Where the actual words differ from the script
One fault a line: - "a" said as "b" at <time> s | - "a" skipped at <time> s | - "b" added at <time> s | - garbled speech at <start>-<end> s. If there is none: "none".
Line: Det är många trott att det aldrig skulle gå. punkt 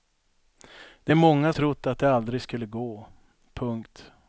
none